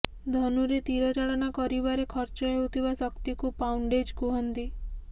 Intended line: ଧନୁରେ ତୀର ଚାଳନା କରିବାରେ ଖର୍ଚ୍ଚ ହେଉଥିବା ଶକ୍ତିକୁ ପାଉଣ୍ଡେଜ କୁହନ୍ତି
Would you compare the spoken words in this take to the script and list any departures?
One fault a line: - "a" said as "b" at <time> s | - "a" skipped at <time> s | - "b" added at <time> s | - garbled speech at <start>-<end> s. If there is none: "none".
none